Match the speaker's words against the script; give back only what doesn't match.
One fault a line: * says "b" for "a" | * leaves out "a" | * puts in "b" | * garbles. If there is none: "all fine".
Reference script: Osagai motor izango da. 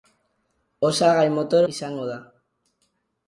all fine